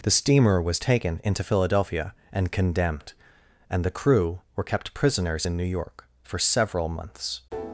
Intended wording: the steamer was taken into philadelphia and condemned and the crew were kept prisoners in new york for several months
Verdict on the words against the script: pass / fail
pass